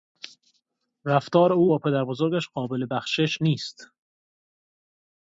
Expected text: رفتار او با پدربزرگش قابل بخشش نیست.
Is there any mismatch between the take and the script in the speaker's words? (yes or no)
no